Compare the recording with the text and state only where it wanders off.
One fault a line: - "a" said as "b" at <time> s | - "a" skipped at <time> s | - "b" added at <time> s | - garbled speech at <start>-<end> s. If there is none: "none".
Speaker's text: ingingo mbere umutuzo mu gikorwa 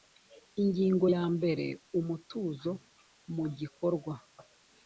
- "ya" added at 1.1 s